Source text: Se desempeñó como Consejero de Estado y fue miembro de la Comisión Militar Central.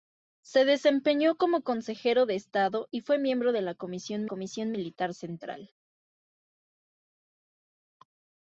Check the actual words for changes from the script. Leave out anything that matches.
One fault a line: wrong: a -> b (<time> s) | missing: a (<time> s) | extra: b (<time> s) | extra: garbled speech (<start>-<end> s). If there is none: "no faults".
extra: Comisión (4.2 s)